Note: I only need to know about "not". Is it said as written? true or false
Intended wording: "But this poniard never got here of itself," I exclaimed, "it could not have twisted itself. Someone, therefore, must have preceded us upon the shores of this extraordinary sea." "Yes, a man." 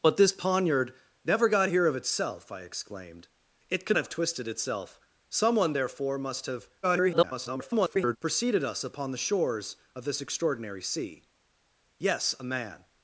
false